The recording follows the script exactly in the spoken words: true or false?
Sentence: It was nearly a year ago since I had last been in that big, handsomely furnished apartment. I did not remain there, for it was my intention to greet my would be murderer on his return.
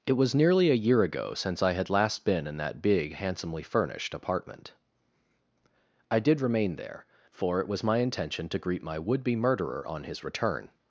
false